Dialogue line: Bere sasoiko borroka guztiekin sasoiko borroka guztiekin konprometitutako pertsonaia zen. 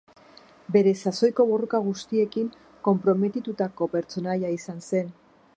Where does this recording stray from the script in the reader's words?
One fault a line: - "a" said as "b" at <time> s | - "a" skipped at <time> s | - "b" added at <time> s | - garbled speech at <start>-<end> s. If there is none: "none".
- "sasoiko borroka guztiekin" skipped at 2.5 s
- "izan" added at 4.6 s